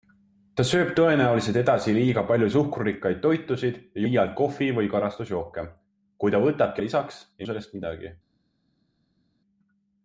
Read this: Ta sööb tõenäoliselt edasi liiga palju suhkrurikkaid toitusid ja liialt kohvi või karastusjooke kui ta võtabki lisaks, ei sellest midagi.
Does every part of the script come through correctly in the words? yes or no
yes